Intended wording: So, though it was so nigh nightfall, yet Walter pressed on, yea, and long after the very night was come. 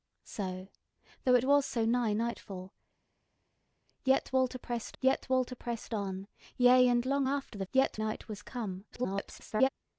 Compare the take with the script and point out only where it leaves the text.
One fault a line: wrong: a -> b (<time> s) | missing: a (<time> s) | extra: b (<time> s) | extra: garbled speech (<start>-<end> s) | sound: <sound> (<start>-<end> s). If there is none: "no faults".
extra: yet Walter pressed (5.0 s)
wrong: very -> yet (7.7 s)
extra: garbled speech (8.9-9.7 s)